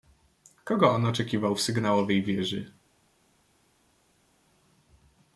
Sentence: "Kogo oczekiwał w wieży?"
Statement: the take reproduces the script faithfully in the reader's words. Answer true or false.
false